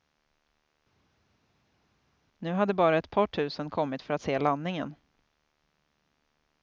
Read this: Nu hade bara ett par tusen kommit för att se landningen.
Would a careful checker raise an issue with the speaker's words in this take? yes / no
no